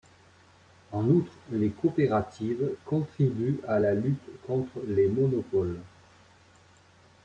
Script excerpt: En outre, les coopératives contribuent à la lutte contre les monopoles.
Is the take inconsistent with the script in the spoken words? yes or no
no